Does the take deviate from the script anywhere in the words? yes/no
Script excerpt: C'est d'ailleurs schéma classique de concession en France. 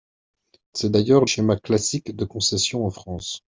no